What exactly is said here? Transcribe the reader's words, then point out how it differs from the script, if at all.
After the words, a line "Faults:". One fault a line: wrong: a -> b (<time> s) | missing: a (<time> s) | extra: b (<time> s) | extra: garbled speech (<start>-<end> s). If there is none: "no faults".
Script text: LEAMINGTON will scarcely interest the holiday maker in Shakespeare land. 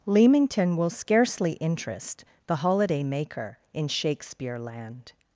LEAMINGTON will scarcely interest the holiday maker in Shakespeare land.
Faults:
no faults